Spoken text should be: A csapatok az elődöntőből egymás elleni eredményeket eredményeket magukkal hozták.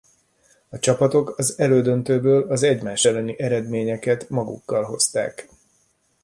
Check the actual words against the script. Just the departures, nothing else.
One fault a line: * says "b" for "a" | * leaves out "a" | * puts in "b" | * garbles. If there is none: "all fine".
* puts in "az"
* leaves out "eredményeket"